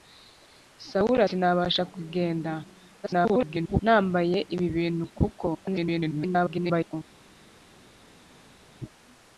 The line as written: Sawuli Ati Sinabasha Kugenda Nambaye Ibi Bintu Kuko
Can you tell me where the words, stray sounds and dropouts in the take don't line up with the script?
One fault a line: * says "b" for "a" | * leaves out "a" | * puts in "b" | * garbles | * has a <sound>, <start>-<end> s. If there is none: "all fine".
* leaves out "Ati"
* garbles
* garbles